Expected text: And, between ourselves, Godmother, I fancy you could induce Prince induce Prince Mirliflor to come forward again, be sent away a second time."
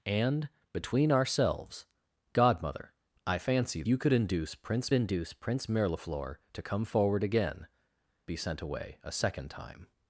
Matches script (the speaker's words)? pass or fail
pass